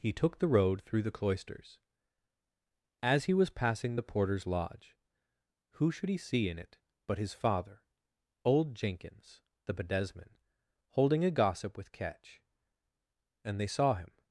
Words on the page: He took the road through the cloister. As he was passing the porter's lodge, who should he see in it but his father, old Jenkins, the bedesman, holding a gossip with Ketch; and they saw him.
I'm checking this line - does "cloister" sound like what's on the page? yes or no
no